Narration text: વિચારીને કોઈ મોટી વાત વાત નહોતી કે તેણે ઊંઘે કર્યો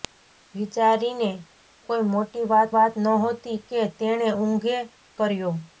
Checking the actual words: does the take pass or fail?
pass